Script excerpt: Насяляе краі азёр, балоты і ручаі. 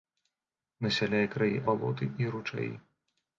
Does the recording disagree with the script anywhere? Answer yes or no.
yes